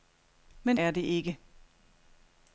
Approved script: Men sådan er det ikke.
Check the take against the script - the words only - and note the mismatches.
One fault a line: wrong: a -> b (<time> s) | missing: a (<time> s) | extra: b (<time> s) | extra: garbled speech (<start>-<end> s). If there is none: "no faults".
missing: sådan (0.8 s)